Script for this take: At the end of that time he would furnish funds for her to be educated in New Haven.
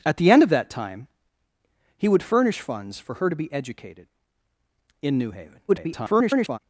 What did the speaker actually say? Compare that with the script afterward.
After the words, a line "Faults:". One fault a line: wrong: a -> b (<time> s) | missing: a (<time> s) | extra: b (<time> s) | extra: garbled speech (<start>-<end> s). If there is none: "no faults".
At the end of that time he would furnish funds for her to be educated in New Haven. [garbled]
Faults:
extra: garbled speech (5.7-6.6 s)